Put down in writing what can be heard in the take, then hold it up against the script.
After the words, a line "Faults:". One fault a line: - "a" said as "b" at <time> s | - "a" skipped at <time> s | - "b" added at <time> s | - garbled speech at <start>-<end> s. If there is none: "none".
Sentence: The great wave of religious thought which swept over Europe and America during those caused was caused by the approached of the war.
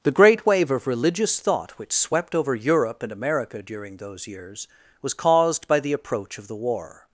The great wave of religious thought which swept over Europe and America during those years was caused by the approach of the war.
Faults:
- "caused" said as "years" at 4.2 s
- "approached" said as "approach" at 5.9 s